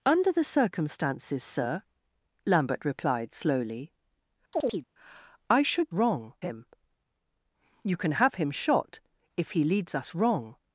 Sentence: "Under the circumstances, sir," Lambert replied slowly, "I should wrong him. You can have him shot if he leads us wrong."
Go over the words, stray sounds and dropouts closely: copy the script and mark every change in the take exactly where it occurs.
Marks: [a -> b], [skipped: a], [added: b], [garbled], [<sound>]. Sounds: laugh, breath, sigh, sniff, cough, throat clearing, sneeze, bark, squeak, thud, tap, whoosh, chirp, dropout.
"Under the circumstances, sir," Lambert replied slowly, [chirp] "I should wrong him. You can have him shot if he leads us wrong."